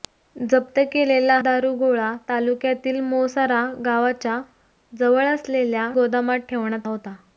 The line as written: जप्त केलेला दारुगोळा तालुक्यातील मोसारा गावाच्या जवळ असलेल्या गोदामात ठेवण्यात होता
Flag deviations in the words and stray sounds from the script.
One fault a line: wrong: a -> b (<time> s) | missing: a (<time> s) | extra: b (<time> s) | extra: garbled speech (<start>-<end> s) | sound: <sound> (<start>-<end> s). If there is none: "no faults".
no faults